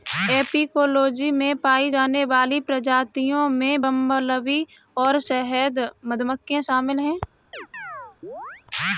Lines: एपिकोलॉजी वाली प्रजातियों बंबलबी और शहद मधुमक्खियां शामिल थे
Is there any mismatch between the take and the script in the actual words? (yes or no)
yes